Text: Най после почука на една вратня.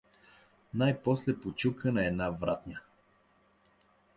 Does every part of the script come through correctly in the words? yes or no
yes